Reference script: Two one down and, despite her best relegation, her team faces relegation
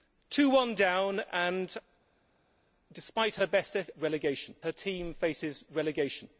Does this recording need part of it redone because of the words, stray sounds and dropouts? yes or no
no